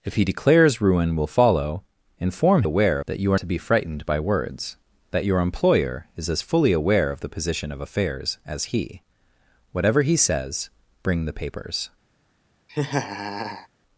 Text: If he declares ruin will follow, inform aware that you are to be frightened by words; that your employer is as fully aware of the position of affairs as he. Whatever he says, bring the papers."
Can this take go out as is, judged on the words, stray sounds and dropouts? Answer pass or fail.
fail